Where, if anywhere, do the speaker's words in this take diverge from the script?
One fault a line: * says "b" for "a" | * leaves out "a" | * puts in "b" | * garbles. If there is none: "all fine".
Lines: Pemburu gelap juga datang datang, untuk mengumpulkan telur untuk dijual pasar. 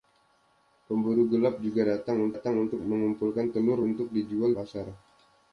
all fine